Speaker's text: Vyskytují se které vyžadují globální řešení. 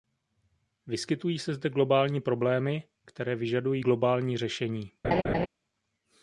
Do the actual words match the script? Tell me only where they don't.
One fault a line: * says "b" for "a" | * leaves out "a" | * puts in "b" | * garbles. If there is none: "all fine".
* puts in "zde globální problémy"